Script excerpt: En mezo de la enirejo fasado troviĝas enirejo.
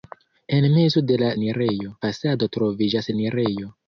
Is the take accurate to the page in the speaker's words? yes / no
yes